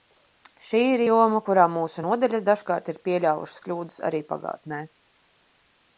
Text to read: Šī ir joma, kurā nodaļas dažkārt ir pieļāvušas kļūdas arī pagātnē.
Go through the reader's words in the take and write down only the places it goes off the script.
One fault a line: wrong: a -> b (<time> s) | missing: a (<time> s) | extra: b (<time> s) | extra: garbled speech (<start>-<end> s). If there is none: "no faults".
extra: mūsu (1.8 s)